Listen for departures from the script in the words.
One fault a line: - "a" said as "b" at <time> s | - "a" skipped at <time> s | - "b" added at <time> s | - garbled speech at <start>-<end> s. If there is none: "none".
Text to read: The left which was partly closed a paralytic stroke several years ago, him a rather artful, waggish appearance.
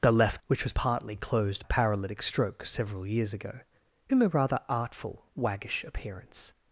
none